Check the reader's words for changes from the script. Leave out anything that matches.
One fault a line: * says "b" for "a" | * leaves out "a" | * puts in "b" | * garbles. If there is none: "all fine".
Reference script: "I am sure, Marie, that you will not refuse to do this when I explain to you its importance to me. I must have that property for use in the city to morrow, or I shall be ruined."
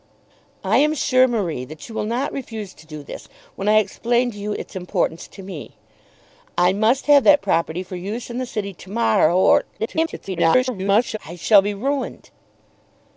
* garbles